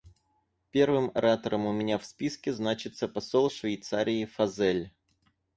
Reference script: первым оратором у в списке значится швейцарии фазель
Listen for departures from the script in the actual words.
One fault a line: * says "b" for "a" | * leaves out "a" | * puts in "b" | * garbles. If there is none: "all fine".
* puts in "меня"
* puts in "посол"